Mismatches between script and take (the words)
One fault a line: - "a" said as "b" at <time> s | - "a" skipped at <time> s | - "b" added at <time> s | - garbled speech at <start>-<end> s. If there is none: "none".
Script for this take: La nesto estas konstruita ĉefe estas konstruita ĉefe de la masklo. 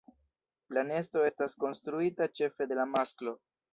- "estas konstruita ĉefe" skipped at 2.7 s